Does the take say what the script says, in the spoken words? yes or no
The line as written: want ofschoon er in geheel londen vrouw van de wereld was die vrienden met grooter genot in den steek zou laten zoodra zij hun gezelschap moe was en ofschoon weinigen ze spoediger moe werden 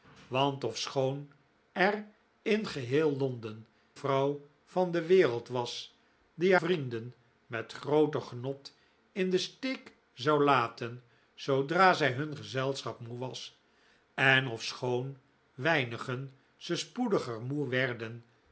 yes